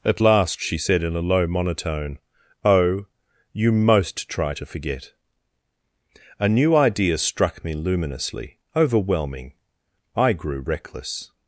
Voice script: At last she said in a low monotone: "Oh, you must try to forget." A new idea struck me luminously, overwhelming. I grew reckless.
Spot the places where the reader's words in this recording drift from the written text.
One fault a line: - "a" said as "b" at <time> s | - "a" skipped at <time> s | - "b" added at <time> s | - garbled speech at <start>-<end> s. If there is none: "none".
- "must" said as "most" at 3.7 s